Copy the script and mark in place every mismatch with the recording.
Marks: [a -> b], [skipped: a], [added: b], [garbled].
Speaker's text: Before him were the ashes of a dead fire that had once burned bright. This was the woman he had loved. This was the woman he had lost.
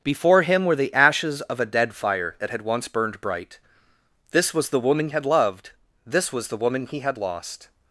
Before him were the ashes of a dead fire that had once burned bright. This was the woman [skipped: he] had loved. This was the woman he had lost.